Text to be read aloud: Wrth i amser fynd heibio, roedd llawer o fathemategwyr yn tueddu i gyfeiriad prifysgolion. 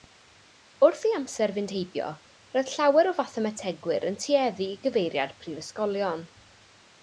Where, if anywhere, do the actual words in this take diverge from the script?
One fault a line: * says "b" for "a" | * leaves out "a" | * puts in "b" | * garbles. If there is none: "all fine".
all fine